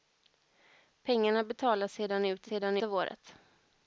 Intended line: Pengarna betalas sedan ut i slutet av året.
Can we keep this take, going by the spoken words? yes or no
no